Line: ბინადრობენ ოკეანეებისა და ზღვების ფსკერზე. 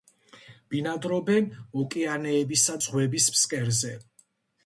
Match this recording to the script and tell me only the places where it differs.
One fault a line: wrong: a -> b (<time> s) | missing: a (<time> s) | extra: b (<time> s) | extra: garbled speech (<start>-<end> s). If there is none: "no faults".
missing: და (2.8 s)